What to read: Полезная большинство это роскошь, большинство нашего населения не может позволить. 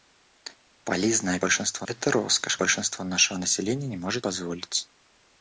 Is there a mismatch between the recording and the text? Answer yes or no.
no